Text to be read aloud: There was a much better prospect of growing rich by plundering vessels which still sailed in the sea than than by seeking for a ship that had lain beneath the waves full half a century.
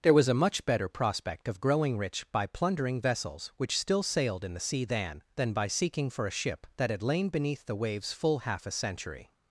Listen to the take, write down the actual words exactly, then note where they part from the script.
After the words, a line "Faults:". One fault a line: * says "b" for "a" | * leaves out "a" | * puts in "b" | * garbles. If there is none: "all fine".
There was a much better prospect of growing rich by plundering vessels which still sailed in the sea than than by seeking for a ship that had lain beneath the waves full half a century.
Faults:
all fine